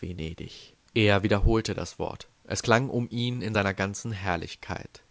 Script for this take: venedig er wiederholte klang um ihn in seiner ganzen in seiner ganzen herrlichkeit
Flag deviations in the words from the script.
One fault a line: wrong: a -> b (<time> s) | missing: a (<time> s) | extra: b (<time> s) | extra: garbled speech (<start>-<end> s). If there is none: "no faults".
extra: das wort es (1.7 s)
missing: in seiner ganzen (4.1 s)